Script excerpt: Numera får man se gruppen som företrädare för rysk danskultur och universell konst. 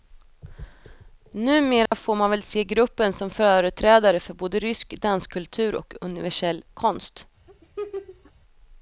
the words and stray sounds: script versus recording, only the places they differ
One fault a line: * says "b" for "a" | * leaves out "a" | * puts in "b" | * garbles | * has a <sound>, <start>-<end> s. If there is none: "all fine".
* has a dropout, 1.9-1.9 s
* puts in "väl"
* puts in "både"
* has a laugh, 7.5-8.3 s